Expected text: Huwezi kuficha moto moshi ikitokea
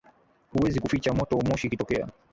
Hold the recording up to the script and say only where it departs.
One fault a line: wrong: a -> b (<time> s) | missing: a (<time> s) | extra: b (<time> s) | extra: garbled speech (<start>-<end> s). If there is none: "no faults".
no faults